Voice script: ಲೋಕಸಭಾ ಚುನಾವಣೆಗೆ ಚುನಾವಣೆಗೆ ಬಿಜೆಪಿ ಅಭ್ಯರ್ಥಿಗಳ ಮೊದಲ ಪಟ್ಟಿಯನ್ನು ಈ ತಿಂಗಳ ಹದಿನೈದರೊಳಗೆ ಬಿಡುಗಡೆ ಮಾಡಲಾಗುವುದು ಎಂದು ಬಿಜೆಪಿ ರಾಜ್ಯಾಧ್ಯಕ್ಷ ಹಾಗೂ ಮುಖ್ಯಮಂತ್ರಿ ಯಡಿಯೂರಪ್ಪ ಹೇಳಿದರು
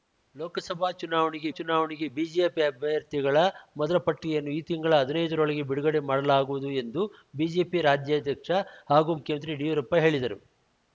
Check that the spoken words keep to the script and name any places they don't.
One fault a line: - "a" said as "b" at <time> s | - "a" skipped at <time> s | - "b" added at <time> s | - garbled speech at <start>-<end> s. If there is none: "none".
none